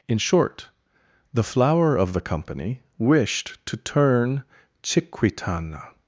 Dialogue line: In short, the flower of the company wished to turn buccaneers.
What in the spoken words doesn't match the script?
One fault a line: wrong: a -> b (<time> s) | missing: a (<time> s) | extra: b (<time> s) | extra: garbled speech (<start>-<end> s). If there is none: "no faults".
wrong: buccaneers -> chiquitana (4.8 s)